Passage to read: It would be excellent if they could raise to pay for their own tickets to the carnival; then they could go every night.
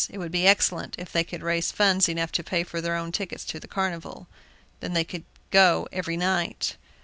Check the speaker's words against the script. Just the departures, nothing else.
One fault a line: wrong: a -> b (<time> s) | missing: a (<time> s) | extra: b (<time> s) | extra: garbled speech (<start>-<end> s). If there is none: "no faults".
extra: funds enough (1.7 s)